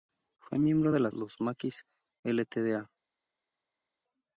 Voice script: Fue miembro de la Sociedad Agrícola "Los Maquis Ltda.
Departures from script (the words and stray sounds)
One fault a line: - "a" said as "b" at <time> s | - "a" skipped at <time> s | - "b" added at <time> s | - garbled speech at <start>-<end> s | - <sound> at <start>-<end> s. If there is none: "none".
- "Sociedad Agrícola" skipped at 1.1 s